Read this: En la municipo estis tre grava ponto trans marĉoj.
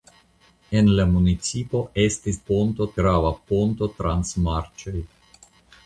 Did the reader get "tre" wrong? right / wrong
wrong